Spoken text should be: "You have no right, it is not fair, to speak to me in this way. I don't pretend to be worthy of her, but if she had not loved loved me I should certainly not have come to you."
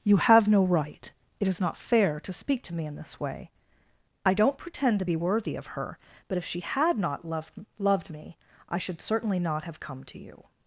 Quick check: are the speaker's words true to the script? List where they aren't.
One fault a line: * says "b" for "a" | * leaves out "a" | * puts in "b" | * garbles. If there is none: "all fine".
all fine